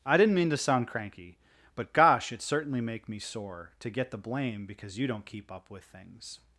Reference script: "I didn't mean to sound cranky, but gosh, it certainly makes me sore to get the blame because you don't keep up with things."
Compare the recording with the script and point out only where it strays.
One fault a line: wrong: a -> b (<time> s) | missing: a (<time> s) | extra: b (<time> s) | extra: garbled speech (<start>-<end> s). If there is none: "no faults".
wrong: makes -> make (2.8 s)